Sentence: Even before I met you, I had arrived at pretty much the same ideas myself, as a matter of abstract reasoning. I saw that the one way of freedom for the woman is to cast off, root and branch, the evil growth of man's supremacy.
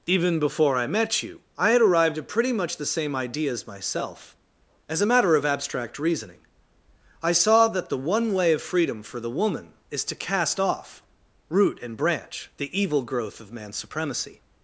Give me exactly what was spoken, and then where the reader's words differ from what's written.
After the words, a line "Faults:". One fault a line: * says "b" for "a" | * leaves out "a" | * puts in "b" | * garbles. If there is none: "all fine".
Even before I met you, I had arrived at pretty much the same ideas myself, as a matter of abstract reasoning. I saw that the one way of freedom for the woman is to cast off, root and branch, the evil growth of man's supremacy.
Faults:
all fine